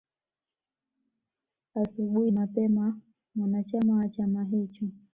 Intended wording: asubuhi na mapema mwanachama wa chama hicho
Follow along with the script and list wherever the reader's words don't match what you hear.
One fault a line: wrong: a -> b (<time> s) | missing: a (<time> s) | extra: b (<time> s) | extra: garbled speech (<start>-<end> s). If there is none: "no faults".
missing: na (2.3 s)